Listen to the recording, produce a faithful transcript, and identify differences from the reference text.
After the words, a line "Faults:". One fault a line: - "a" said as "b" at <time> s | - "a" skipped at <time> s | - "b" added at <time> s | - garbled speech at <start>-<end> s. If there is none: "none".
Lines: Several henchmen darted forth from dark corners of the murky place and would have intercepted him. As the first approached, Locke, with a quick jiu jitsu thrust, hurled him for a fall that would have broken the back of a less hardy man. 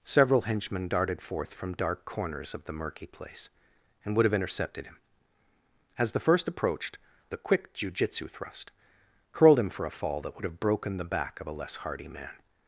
Several henchmen darted forth from dark corners of the murky place and would have intercepted him. As the first approached, A quick jiu jitsu thrust, hurled him for a fall that would have broken the back of a less hardy man.
Faults:
- "Locke with" skipped at 7.0 s